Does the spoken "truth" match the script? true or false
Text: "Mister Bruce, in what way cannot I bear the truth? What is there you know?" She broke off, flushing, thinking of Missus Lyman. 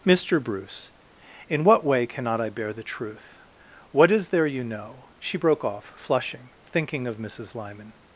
true